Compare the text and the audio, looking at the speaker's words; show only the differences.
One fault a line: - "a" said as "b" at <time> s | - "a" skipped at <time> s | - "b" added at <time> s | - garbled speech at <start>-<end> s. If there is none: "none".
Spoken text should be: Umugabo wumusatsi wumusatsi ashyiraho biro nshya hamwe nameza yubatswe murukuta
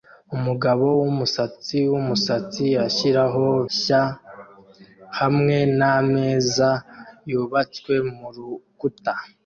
- "biro" skipped at 3.4 s